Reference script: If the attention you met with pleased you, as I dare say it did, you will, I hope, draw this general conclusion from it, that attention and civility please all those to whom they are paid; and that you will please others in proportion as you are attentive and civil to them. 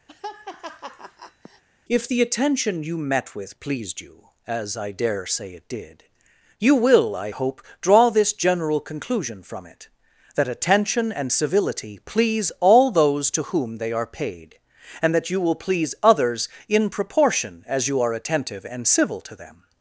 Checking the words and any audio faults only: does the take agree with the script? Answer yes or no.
no